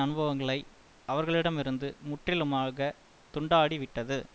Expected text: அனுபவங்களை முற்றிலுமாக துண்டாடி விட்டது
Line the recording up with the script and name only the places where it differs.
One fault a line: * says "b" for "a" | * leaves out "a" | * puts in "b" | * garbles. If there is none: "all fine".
* puts in "அவர்களிடமிருந்து"